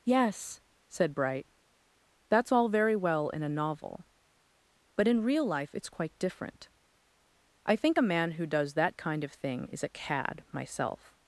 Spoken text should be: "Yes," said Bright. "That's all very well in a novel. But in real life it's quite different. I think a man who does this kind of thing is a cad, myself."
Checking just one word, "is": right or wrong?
right